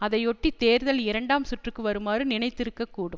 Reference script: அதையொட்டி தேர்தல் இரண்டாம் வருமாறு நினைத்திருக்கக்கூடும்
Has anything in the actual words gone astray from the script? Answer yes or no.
yes